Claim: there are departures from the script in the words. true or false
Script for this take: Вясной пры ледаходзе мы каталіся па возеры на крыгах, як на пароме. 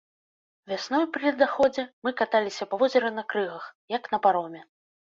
false